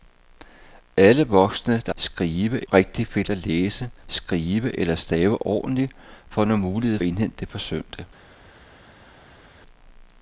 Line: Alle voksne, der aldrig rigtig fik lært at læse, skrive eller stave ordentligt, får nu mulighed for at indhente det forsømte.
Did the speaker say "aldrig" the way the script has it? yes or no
no